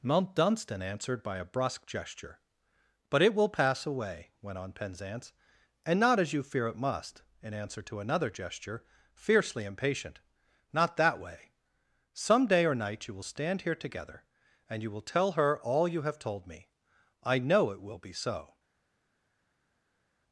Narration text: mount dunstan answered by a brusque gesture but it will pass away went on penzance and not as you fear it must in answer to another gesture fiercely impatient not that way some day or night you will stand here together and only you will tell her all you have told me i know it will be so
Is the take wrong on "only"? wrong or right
wrong